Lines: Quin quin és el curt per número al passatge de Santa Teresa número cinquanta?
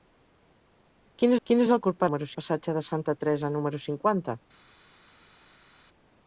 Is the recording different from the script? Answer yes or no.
no